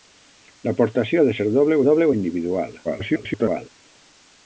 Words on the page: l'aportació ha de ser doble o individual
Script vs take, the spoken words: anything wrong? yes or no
yes